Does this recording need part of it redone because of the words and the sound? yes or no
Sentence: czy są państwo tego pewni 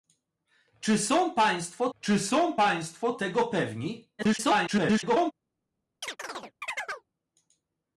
yes